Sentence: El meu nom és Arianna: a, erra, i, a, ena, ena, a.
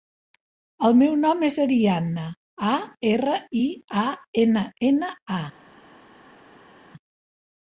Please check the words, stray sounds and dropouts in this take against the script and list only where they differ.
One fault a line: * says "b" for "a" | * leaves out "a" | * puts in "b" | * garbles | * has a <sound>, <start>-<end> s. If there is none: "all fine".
all fine